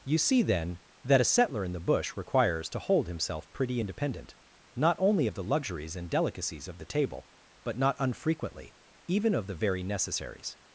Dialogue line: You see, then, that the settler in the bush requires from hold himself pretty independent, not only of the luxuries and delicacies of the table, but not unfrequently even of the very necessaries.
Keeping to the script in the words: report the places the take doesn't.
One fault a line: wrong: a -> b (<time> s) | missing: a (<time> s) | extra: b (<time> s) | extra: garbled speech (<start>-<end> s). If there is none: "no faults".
wrong: the -> a (1.2 s)
wrong: from -> to (2.7 s)